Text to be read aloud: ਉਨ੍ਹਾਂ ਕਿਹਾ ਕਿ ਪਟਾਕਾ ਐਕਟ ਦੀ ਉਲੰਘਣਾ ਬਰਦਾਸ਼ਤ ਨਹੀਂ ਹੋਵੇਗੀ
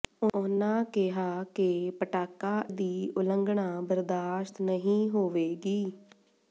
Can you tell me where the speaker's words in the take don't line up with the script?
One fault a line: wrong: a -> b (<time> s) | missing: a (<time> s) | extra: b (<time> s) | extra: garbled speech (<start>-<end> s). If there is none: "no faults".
missing: ਐਕਟ (2.5 s)